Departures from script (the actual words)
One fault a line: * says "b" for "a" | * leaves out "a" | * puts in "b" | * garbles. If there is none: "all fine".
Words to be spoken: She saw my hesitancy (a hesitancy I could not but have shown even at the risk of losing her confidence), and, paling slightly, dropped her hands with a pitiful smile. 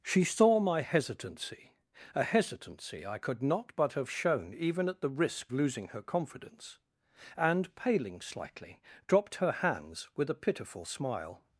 * leaves out "of"